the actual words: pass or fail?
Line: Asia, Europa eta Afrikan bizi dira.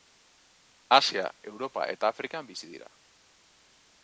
pass